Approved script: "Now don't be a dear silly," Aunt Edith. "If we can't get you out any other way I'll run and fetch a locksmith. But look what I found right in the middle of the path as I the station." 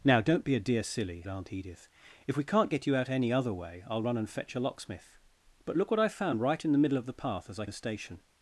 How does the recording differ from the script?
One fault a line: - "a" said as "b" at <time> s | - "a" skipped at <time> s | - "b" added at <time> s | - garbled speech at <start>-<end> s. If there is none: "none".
none